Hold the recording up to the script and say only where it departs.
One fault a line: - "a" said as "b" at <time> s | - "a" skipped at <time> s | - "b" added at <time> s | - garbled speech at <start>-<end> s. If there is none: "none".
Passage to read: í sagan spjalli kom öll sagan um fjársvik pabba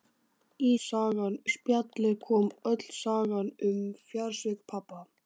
none